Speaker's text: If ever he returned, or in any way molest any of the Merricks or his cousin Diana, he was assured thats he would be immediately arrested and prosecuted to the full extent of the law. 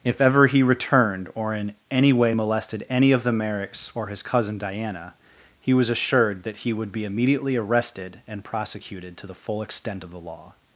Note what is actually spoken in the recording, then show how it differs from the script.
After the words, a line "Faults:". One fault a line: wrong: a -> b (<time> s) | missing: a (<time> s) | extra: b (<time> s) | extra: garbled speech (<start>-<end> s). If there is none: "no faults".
If ever he returned, or in any way molested any of the Merricks or his cousin Diana, he was assured that he would be immediately arrested and prosecuted to the full extent of the law.
Faults:
wrong: molest -> molested (2.3 s)
wrong: thats -> that (6.4 s)